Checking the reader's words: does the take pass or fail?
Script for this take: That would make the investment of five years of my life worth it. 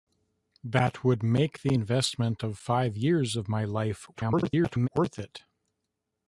fail